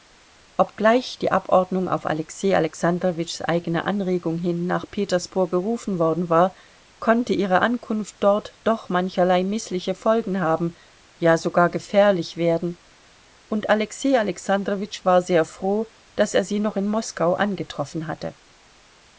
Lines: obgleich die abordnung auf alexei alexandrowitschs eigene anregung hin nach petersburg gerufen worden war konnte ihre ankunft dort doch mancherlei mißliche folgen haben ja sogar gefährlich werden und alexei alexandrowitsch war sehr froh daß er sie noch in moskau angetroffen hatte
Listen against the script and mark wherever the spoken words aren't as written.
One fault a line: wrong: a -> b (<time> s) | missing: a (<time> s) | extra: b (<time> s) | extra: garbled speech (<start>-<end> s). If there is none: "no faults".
no faults